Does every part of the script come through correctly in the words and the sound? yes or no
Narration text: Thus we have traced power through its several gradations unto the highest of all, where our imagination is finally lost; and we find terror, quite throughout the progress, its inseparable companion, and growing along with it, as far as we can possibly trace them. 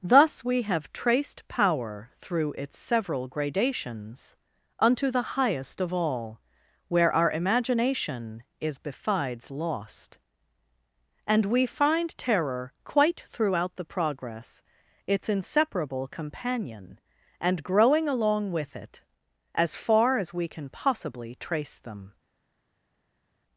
no